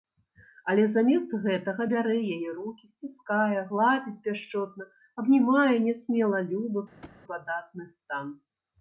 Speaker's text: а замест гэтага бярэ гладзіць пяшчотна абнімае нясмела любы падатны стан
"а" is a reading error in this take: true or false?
true